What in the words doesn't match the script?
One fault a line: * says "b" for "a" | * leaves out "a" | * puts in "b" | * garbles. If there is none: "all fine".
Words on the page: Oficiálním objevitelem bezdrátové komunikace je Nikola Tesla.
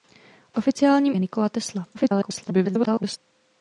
* leaves out "objevitelem bezdrátové komunikace"
* garbles